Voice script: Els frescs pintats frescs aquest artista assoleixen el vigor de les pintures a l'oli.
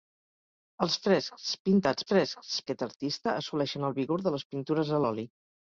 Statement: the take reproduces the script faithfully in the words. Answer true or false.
true